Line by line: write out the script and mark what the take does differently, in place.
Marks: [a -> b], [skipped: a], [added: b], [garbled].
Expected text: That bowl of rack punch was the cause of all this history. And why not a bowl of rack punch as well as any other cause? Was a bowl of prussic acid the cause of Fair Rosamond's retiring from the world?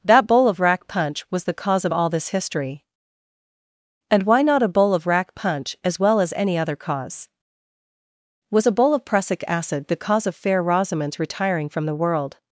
That bowl of rack punch was the cause of all this history. And why not a bowl of rack punch as well as any other cause? Was a bowl of prussic acid the cause of Fair Rosamond's retiring from the world?